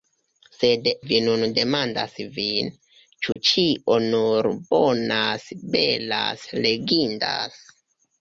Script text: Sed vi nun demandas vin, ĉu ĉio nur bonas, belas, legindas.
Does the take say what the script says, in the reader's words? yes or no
yes